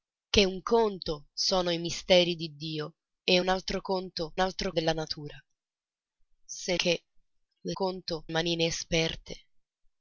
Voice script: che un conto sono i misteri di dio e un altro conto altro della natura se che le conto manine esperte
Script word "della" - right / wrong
right